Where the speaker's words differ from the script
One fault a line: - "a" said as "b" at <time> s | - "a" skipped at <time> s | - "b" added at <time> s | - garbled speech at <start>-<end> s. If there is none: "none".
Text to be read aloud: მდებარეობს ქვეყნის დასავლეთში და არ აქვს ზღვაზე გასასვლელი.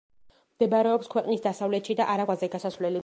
- "აქვს" skipped at 2.3 s